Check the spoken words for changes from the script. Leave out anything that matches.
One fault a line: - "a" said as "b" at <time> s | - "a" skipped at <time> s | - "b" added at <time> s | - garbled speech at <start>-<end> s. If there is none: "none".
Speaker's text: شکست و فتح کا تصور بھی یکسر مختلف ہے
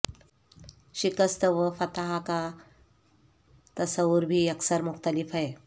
none